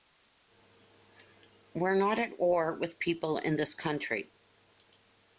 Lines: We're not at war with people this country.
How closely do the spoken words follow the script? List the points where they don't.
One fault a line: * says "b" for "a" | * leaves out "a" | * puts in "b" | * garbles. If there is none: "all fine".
* puts in "in"